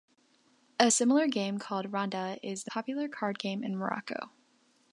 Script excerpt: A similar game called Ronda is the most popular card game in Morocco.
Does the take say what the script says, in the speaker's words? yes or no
no